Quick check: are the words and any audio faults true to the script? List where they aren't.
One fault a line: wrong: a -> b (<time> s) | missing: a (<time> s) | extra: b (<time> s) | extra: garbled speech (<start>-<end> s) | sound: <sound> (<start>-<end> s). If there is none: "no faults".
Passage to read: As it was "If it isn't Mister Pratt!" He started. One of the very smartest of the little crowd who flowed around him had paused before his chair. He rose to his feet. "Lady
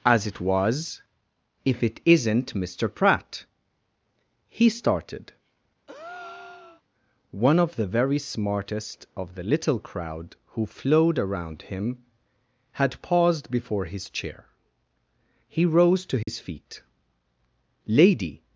sound: breath (5.9-6.8 s)
sound: dropout (16.2-16.3 s)